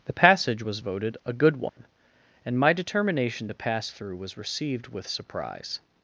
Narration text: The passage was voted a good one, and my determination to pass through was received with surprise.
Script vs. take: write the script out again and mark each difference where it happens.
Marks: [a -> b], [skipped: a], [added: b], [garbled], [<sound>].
The passage was voted a good one, [dropout] and my determination to pass through was received with surprise.